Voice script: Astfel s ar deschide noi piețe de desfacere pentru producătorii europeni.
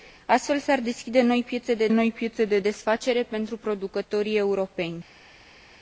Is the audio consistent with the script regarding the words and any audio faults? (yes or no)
no